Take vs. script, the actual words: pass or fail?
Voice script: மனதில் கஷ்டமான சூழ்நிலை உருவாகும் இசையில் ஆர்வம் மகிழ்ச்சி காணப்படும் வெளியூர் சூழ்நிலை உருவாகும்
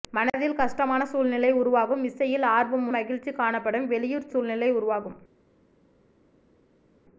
pass